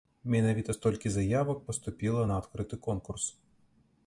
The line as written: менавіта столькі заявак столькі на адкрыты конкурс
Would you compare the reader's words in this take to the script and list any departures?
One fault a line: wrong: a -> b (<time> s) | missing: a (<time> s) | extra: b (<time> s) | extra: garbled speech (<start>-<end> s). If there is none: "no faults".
wrong: столькі -> паступіла (1.7 s)